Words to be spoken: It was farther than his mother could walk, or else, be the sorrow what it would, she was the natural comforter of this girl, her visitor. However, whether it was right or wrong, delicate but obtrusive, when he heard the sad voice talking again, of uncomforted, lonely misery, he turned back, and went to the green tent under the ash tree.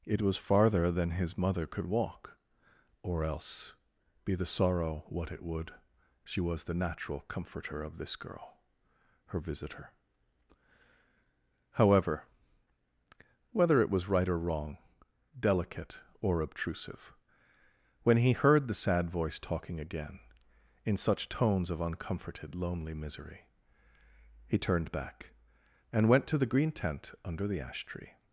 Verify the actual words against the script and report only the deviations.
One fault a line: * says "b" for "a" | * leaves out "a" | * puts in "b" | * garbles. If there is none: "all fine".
* says "or" for "but"
* puts in "in such tones"